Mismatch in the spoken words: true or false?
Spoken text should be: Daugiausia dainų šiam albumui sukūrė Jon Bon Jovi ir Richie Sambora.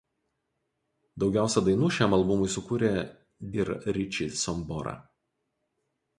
true